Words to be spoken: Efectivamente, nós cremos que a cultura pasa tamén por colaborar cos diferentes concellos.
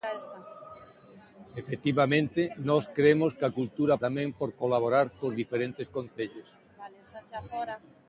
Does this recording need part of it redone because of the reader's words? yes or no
yes